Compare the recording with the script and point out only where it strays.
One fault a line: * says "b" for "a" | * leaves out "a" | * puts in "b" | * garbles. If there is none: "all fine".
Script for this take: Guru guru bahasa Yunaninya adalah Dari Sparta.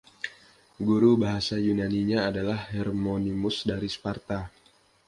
* leaves out "guru"
* puts in "Hermonymus"